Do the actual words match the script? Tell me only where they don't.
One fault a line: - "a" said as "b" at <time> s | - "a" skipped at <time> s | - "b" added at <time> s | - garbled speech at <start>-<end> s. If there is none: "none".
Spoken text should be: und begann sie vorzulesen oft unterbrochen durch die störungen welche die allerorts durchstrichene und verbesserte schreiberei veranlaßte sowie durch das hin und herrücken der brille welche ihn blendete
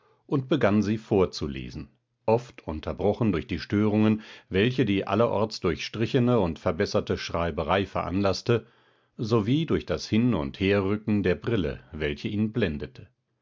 none